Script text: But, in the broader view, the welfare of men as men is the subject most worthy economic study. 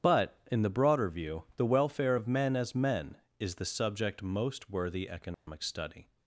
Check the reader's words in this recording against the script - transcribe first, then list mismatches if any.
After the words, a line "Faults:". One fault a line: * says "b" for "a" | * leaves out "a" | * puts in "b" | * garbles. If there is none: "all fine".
But, in the broader view, the welfare of men as men is the subject most worthy economic study.
Faults:
all fine